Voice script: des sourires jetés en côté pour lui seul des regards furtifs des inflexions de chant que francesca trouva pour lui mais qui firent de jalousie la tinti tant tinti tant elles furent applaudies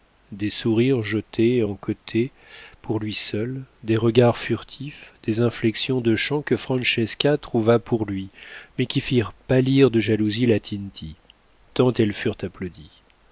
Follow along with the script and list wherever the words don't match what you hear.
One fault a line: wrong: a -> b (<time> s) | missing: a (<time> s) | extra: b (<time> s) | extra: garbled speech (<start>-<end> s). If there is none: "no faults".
extra: pâlir (9.3 s)
missing: tinti tant (11.9 s)